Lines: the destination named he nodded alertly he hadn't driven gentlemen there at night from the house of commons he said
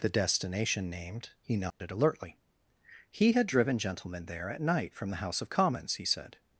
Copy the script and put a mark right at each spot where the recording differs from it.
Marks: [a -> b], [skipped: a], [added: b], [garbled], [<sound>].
the destination named he nodded [dropout] alertly he [hadn't -> had] driven gentlemen there at night from the house of commons he said